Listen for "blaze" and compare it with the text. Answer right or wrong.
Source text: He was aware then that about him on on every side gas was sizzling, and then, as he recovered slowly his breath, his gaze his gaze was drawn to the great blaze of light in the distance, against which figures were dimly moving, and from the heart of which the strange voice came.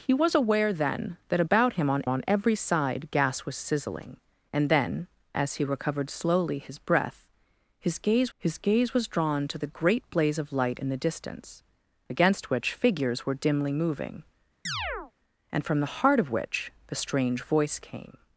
right